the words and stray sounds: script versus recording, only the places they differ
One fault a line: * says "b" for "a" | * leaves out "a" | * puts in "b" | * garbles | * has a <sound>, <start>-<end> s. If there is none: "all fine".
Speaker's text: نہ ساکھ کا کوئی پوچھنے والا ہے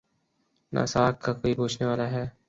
all fine